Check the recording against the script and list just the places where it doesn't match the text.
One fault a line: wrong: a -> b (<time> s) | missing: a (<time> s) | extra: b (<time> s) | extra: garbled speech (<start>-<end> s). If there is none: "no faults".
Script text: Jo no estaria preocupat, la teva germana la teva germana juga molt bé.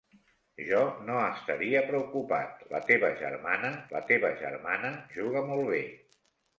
no faults